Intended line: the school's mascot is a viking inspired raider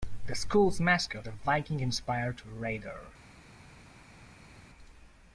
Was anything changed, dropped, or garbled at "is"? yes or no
yes